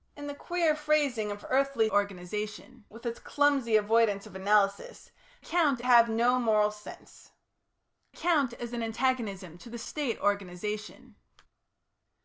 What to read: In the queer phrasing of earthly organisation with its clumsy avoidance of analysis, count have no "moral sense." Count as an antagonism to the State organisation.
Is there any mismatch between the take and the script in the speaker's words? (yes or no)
no